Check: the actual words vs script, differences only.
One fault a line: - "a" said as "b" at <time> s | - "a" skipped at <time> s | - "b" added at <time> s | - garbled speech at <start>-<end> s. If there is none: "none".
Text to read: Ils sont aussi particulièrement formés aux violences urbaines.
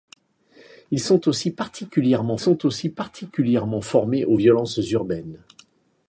- "sont aussi particulièrement" added at 2.3 s